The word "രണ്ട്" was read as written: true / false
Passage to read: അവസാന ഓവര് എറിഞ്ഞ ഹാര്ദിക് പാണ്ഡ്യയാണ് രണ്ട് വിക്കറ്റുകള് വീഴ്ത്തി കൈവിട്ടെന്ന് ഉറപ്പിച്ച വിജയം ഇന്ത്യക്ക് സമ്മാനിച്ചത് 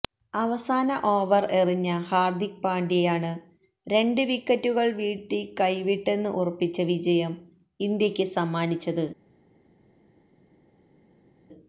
true